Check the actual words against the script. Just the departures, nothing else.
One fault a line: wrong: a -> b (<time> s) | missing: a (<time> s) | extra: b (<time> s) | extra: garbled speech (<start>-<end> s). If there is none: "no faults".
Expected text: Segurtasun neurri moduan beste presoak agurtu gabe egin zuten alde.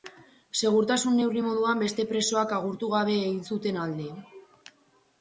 no faults